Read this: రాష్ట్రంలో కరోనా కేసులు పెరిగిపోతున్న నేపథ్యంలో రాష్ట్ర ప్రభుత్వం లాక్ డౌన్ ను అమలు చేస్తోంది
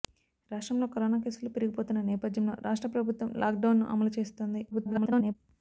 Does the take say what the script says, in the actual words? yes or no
no